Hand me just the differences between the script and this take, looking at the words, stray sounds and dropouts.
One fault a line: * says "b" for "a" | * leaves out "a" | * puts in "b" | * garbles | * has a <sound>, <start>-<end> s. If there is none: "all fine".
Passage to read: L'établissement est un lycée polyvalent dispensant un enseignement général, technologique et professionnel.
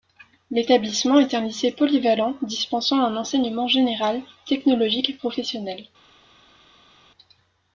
all fine